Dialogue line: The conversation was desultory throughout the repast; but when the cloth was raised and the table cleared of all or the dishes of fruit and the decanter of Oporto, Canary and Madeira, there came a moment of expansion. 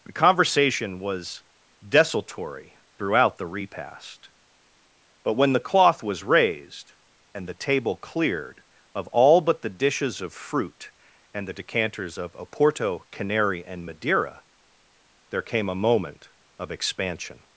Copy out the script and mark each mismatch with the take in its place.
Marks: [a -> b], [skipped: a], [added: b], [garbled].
The conversation was desultory throughout the repast; but when the cloth was raised and the table cleared of all [or -> but] the dishes of fruit and the [decanter -> decanters] of Oporto, Canary and Madeira, there came a moment of expansion.